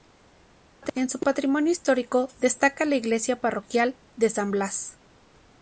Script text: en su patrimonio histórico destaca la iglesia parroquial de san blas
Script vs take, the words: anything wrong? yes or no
no